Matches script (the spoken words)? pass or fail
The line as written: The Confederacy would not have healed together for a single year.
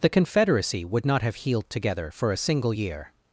pass